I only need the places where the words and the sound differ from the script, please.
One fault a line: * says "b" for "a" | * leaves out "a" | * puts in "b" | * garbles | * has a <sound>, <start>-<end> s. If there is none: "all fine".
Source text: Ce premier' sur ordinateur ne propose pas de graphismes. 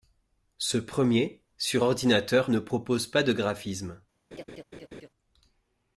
* has a laugh, 4.3-5.1 s